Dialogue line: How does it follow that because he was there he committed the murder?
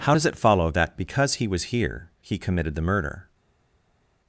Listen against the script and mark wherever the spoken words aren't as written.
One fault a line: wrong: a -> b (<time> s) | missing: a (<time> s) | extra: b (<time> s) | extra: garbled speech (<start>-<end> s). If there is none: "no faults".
wrong: there -> here (1.7 s)